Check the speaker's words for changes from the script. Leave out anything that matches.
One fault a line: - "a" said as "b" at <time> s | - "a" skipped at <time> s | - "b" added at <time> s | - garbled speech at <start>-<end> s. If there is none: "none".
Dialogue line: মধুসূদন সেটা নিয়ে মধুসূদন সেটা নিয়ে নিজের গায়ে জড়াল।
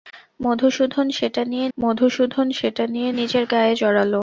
none